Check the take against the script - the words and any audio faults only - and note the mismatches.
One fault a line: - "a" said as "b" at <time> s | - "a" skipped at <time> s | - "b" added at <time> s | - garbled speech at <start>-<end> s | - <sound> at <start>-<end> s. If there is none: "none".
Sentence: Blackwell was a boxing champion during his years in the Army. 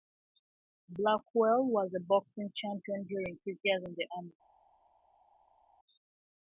none